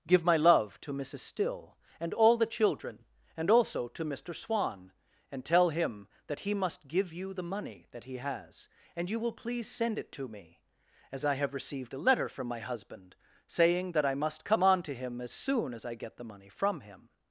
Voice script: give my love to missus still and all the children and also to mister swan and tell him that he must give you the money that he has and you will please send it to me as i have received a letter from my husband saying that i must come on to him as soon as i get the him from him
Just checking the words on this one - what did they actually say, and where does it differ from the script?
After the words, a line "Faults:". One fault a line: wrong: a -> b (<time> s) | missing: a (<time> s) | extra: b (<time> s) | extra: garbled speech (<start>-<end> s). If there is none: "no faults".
give my love to missus still and all the children and also to mister swan and tell him that he must give you the money that he has and you will please send it to me as i have received a letter from my husband saying that i must come on to him as soon as i get the money from him
Faults:
wrong: him -> money (16.2 s)